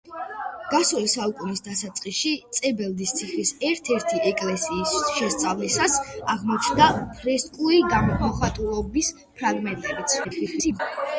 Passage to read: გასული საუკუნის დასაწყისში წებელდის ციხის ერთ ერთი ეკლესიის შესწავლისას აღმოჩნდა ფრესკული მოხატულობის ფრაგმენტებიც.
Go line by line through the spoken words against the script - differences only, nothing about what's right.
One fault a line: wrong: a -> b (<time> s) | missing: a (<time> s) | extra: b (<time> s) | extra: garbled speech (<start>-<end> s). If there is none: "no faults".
extra: garbled speech (10.2-10.8 s)